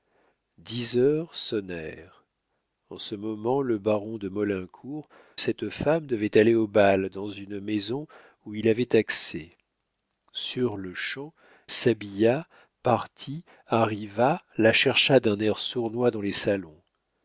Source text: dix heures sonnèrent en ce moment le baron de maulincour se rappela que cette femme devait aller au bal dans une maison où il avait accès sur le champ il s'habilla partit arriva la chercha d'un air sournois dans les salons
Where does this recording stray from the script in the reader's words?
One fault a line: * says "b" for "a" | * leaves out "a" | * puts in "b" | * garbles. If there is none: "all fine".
* leaves out "se rappela que"
* leaves out "il"